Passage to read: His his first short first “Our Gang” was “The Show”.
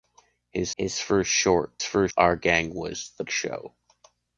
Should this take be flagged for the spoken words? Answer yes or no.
no